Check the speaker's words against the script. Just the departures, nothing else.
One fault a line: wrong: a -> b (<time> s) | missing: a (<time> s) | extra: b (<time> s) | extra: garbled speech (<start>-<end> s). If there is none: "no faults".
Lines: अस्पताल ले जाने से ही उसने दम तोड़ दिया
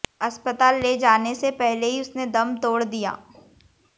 extra: पहले (1.6 s)